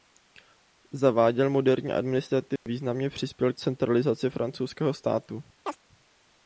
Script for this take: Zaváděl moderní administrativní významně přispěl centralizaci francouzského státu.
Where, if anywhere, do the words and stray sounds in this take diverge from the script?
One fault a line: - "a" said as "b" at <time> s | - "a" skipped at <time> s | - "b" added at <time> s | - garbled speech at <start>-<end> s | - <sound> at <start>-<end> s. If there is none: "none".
- dropout at 2.6-2.7 s
- chirp at 5.7-5.8 s